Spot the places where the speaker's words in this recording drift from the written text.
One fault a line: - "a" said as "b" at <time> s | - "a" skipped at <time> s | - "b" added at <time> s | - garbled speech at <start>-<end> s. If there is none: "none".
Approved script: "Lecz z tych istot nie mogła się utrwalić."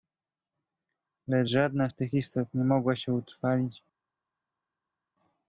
- "żadna" added at 1.5 s